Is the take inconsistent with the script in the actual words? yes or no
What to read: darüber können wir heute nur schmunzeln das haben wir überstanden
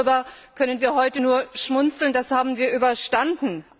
no